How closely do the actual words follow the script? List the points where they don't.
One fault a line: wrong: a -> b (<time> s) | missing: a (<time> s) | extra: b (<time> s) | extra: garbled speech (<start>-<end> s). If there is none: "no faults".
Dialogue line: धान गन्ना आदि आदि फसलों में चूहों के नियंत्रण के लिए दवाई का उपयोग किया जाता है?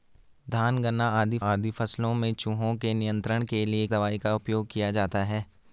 no faults